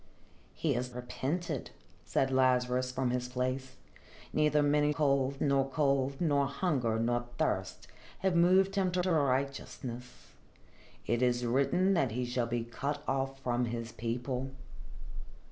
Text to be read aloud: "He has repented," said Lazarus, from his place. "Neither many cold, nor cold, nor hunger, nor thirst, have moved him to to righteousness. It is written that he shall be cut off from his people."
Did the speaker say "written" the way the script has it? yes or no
yes